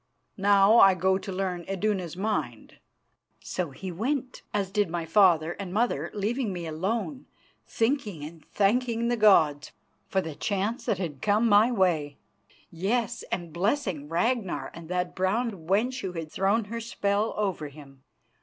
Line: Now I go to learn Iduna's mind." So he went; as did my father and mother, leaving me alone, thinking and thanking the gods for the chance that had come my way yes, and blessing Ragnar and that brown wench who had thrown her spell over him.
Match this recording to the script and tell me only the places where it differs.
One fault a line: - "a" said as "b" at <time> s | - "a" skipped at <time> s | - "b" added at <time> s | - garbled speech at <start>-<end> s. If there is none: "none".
none